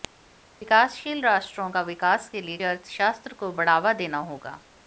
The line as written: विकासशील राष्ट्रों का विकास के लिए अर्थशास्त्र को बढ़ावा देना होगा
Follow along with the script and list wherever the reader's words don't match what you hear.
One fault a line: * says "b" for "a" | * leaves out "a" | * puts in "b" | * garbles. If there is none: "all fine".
all fine